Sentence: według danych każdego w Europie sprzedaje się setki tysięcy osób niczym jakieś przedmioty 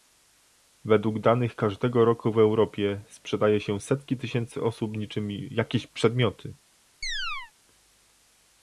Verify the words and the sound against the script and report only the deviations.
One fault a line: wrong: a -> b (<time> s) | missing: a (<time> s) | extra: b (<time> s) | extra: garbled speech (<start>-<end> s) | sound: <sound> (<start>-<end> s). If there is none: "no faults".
extra: roku (2.0 s)
sound: chirp (7.0-7.5 s)